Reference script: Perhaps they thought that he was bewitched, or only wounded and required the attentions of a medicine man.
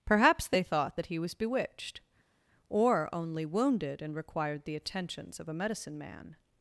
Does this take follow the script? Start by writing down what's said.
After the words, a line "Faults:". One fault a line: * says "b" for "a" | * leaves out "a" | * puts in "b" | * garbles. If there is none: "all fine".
Perhaps they thought that he was bewitched, or only wounded and required the attentions of a medicine man.
Faults:
all fine